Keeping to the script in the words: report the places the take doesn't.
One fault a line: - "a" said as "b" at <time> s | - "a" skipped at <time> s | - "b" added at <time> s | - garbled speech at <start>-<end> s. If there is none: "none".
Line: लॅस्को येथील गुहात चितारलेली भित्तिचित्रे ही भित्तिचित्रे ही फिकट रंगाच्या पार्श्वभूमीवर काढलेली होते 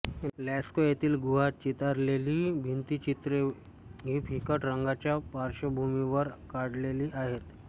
- "भित्तिचित्रे ही" skipped at 4.2 s
- "होते" said as "आहेत" at 7.1 s